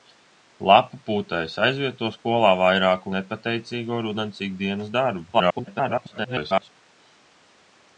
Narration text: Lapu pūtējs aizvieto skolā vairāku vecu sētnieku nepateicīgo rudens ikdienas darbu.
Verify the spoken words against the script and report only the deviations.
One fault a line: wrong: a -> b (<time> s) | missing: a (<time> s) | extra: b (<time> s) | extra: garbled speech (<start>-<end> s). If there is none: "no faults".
missing: vecu sētnieku (3.1 s)
extra: garbled speech (5.3-6.7 s)